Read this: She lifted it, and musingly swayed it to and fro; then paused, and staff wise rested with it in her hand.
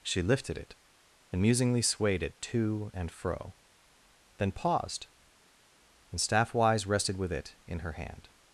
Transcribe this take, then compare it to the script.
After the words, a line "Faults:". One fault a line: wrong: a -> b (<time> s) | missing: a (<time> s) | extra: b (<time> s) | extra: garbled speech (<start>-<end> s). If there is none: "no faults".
She lifted it, and musingly swayed it to and fro; then paused, and staff wise rested with it in her hand.
Faults:
no faults